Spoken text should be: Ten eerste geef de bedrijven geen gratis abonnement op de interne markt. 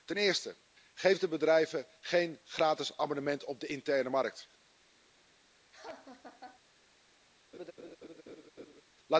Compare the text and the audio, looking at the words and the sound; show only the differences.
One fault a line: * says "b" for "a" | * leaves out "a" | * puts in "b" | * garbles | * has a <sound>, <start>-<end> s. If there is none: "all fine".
* has a laugh, 5.7-6.6 s
* has a laugh, 7.5-8.8 s